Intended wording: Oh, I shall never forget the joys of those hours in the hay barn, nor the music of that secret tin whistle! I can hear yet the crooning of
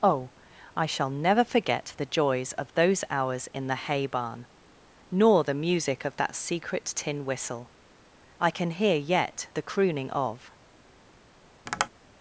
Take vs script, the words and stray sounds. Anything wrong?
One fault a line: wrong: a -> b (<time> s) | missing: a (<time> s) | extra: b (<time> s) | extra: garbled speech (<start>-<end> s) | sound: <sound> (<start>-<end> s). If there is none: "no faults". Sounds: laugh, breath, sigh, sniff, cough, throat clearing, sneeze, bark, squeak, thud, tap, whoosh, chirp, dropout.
sound: tap (11.7-11.9 s)